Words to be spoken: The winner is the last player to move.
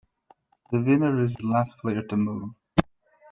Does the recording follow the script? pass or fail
pass